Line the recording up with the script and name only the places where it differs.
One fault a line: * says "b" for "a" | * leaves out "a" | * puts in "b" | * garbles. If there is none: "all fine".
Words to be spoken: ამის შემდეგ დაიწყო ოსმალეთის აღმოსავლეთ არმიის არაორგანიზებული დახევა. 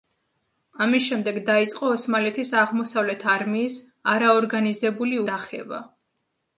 all fine